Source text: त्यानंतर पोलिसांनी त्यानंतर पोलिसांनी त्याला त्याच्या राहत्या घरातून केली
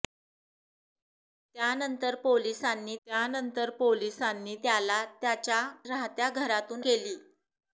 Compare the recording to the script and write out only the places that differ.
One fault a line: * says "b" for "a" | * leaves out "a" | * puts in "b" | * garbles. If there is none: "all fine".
all fine